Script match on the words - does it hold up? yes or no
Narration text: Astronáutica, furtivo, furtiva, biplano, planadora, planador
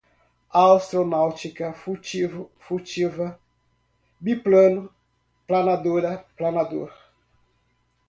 yes